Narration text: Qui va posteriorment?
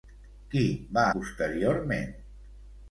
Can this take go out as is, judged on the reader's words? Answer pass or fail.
pass